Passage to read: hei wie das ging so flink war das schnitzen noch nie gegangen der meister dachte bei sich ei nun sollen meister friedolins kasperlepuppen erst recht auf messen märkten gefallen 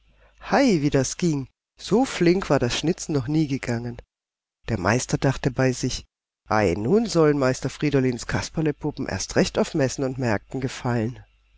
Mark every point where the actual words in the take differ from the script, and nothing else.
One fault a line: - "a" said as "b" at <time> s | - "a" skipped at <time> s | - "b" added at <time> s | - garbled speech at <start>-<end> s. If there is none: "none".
- "und" added at 10.0 s